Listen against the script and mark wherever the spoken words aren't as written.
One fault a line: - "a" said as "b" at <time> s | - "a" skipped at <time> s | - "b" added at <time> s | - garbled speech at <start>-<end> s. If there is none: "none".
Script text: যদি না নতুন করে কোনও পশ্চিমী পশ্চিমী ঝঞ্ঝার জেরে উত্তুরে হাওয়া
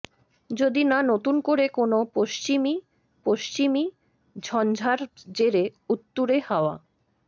none